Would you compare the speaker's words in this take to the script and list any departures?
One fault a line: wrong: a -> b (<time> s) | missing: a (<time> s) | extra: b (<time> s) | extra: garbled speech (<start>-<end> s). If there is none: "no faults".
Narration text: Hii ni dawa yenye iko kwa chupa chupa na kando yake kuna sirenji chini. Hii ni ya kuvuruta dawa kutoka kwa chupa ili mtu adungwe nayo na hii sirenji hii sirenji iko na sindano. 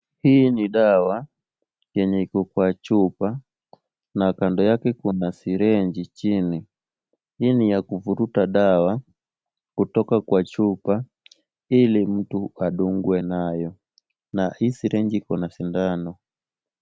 missing: chupa (3.4 s)
missing: hii sirenji (15.2 s)